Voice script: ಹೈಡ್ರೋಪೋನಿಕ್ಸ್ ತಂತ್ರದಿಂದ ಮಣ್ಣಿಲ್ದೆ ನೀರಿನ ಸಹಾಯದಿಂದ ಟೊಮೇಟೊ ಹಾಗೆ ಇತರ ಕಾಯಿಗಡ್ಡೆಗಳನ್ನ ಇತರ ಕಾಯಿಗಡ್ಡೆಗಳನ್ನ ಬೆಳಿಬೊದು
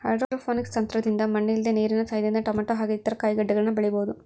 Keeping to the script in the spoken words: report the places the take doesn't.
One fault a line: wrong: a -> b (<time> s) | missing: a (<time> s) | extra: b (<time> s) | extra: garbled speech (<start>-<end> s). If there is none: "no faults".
missing: ಇತರ ಕಾಯಿಗಡ್ಡೆಗಳನ್ನ (3.7 s)